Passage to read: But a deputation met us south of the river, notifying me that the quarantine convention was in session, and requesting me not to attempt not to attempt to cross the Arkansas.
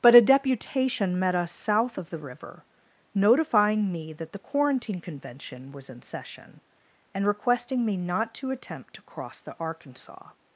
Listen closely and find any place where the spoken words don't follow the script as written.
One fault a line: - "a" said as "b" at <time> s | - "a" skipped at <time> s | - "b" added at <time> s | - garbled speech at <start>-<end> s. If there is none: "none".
- "not to attempt" skipped at 8.9 s